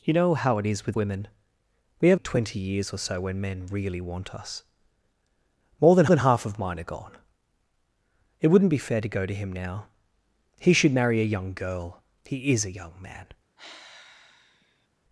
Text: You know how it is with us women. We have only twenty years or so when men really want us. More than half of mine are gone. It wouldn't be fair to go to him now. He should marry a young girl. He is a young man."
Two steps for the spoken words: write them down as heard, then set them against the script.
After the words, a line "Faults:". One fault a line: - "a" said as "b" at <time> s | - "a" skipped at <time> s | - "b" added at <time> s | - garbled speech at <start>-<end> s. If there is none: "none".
You know how it is with women. We have twenty years or so when men really want us. More than than half of mine are gone. It wouldn't be fair to go to him now. He should marry a young girl. He is a young man."
Faults:
- "us" skipped at 1.0 s
- "only" skipped at 2.2 s
- "than" added at 6.1 s